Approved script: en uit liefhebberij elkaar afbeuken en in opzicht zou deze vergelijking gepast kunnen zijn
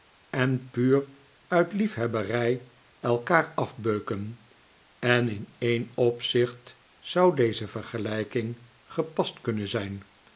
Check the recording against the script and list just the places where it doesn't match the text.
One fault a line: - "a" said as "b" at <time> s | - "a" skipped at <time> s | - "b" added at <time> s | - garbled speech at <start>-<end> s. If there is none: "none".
- "puur" added at 0.7 s
- "een" added at 5.6 s